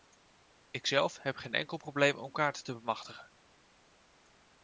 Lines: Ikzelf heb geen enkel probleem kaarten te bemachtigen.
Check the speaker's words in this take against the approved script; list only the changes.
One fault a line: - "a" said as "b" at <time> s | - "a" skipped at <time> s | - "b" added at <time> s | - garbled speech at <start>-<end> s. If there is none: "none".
- "om" added at 2.2 s